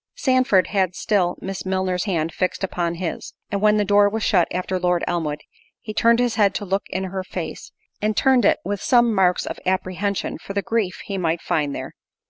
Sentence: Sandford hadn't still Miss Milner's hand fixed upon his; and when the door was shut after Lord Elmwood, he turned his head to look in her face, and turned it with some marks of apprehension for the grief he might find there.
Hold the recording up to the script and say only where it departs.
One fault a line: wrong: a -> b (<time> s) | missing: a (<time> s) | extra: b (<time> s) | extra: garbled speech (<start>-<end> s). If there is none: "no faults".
wrong: hadn't -> had (0.7 s)